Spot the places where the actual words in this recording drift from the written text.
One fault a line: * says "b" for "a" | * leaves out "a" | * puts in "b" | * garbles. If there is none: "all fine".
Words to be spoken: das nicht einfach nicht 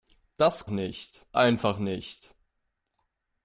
all fine